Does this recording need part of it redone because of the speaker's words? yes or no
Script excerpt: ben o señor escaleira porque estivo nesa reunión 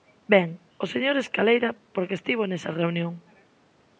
no